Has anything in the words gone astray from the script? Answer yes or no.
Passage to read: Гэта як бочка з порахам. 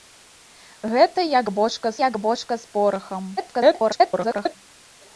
yes